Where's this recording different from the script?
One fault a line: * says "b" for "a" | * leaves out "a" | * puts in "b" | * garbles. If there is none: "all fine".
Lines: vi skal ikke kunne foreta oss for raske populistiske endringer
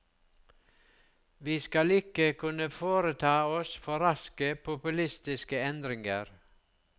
all fine